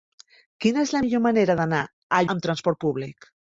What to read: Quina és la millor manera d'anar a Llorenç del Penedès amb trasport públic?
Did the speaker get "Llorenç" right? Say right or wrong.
wrong